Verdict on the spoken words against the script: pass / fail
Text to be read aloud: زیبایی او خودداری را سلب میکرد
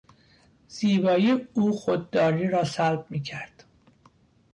pass